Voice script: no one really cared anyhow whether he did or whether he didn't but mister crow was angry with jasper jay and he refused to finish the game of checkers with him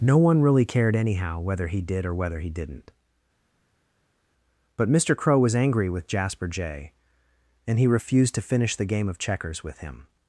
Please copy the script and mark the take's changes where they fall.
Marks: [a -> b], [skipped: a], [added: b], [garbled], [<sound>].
no one really cared anyhow whether he did or whether he didn't but mister crow was angry with jasper jay and he refused to finish the game of checkers with him